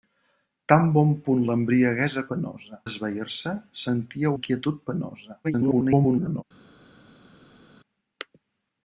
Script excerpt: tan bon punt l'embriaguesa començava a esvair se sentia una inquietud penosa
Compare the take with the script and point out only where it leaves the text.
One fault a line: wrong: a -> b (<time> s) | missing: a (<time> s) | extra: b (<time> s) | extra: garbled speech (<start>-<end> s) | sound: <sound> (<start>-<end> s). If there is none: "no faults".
wrong: començava -> penosa (2.3 s)
missing: una (4.3 s)
extra: garbled speech (5.4-6.4 s)